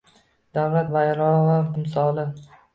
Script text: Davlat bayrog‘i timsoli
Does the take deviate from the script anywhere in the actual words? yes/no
no